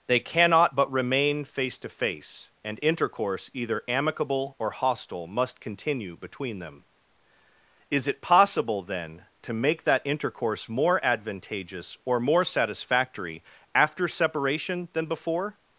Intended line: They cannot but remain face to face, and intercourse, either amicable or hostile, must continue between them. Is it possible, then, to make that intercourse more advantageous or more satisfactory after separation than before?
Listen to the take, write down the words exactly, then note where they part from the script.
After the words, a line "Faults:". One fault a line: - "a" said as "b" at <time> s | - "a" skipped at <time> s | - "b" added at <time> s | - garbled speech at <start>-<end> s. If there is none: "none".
They cannot but remain face to face, and intercourse, either amicable or hostile, must continue between them. Is it possible, then, to make that intercourse more advantageous or more satisfactory after separation than before?
Faults:
none